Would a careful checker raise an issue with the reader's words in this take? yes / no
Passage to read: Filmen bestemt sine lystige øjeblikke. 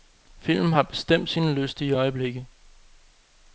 yes